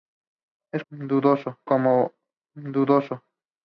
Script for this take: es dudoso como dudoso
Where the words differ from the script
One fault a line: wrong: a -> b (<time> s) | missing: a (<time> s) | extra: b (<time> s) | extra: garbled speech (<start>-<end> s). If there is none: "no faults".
no faults